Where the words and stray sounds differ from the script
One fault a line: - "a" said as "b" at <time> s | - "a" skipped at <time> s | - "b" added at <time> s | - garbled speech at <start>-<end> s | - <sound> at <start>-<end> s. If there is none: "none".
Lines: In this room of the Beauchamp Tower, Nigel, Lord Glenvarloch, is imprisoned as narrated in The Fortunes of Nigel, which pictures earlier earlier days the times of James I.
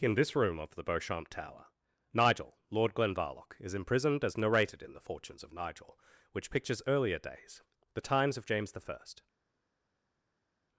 - "earlier" skipped at 7.2 s